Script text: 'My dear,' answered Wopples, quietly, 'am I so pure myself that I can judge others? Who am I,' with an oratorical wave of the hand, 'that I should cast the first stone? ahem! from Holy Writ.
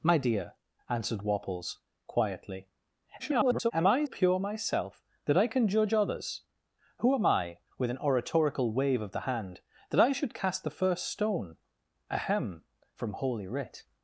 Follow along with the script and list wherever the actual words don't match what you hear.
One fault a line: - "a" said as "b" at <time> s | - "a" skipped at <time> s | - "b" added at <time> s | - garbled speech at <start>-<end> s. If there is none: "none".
- garbled speech at 3.2-3.7 s
- "so" skipped at 4.0 s